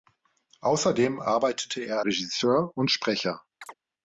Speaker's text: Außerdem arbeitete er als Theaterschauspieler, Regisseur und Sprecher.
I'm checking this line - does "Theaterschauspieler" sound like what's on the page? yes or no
no